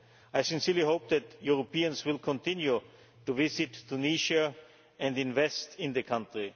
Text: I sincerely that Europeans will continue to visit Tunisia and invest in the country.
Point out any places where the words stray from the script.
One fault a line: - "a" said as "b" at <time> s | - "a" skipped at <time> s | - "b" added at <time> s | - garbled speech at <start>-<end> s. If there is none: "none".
- "hope" added at 0.8 s